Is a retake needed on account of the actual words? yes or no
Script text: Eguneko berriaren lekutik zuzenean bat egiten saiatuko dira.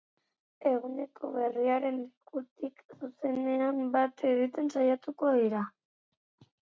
no